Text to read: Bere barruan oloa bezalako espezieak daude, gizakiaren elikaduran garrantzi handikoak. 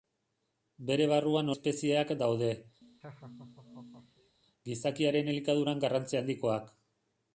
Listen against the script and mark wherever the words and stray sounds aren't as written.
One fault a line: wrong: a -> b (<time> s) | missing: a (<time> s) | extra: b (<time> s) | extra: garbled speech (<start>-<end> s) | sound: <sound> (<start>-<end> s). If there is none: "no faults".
missing: oloa bezalako (1.5 s)
sound: laugh (2.8-4.4 s)